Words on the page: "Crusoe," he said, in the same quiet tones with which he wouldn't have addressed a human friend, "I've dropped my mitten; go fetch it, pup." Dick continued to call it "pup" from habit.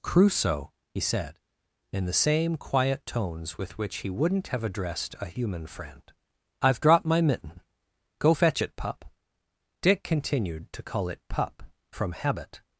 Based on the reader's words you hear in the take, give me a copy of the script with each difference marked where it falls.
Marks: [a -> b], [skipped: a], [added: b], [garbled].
"Crusoe," he said, in the same quiet tones with which he wouldn't have addressed a human friend, "I've dropped my mitten; go fetch it, pup." Dick continued to call it "pup" from habit.